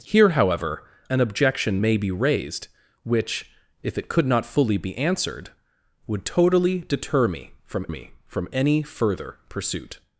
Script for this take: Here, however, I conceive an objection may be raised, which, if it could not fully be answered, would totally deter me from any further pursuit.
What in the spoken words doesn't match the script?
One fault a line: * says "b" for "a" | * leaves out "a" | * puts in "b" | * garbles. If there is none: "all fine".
* leaves out "I conceive"
* puts in "me from"